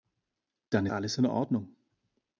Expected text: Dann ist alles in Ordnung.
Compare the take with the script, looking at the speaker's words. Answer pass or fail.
fail